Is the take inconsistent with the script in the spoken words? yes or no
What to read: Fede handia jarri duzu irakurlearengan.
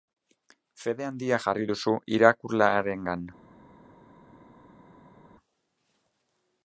no